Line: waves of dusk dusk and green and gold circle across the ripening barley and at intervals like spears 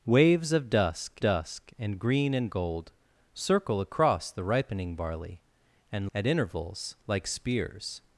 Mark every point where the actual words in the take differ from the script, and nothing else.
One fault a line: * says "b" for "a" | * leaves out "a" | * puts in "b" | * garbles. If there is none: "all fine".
all fine